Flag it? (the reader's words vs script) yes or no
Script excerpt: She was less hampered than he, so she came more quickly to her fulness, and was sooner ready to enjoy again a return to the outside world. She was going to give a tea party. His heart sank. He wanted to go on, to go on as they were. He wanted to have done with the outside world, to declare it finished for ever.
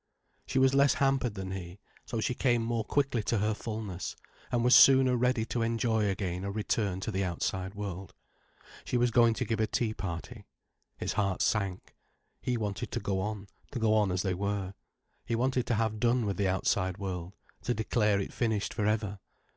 no